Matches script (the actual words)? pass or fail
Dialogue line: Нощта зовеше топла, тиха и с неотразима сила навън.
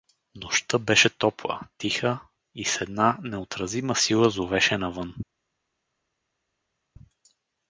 fail